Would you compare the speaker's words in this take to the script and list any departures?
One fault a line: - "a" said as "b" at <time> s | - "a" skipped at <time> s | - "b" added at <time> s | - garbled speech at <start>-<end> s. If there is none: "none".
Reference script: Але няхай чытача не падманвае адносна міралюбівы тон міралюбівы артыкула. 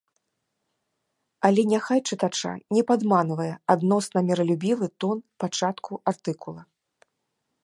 - "міралюбівы" said as "пачатку" at 5.5 s